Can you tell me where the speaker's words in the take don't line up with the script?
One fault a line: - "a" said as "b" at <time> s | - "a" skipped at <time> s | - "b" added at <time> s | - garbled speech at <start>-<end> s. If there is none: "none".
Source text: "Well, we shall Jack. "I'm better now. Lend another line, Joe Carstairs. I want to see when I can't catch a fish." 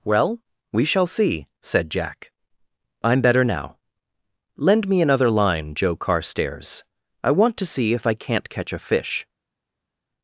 - "see said" added at 1.1 s
- "me" added at 4.9 s
- "when" said as "if" at 7.9 s